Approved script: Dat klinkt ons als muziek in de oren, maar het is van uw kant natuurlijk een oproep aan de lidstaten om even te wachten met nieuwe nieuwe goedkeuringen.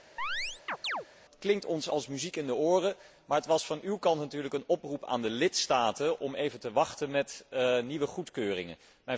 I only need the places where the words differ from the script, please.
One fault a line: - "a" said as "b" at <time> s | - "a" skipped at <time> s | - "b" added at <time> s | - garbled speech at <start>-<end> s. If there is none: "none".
- "is" said as "was" at 3.5 s
- "nieuwe" skipped at 8.1 s